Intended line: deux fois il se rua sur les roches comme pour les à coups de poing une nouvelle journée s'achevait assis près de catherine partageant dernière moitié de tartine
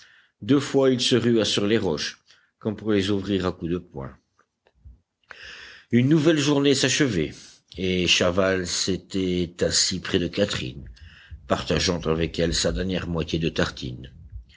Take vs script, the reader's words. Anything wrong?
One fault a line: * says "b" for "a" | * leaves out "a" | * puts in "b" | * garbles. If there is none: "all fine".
* puts in "ouvrir"
* puts in "et chaval s'était"
* puts in "avec elle sa"